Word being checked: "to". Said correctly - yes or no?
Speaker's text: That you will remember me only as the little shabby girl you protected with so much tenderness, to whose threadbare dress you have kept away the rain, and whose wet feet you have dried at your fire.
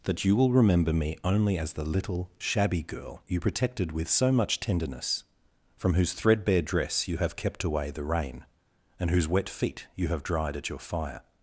no